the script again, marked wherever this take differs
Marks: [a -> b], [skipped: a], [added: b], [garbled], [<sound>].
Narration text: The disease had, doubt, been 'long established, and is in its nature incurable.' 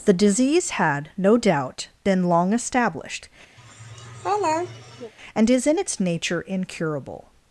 The disease had, [added: no] doubt, been 'long established, [laugh] and is in its nature incurable.'